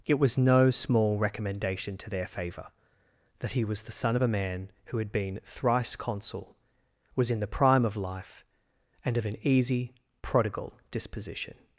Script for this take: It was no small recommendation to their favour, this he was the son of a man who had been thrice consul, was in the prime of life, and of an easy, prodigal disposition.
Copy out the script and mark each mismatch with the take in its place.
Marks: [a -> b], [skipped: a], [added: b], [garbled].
It was no small recommendation to their favour, [this -> that] he was the son of a man who had been thrice consul, was in the prime of life, and of an easy, prodigal disposition.